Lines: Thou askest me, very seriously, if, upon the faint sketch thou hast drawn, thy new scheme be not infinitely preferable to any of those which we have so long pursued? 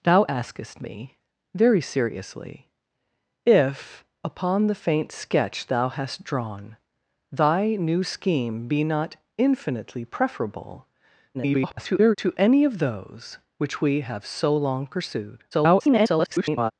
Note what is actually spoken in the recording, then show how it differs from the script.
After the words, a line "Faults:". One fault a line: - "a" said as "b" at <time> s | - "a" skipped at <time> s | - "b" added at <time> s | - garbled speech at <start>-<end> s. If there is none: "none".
Thou askest me, very seriously, if, upon the faint sketch thou hast drawn, thy new scheme be not infinitely preferable [garbled] to any of those which we have so long pursued? [garbled]
Faults:
- garbled speech at 11.3-12.2 s
- garbled speech at 15.5-16.7 s